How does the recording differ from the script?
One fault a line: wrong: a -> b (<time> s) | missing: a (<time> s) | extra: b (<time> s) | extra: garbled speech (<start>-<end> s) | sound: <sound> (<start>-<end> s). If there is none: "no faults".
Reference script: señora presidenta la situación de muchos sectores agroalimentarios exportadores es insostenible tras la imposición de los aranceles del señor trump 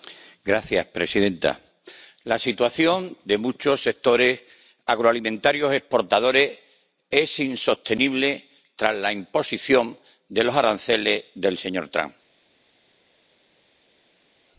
no faults